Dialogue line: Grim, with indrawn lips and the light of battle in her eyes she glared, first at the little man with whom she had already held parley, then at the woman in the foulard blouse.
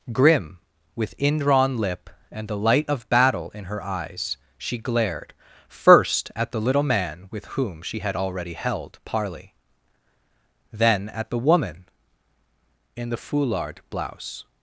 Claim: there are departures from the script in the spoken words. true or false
true